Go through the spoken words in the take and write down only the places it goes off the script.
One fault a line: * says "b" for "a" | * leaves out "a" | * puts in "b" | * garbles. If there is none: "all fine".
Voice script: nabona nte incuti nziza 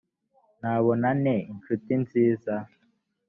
all fine